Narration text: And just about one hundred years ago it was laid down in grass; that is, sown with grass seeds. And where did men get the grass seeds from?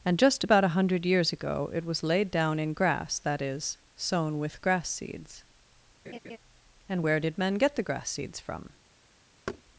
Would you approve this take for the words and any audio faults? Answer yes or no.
no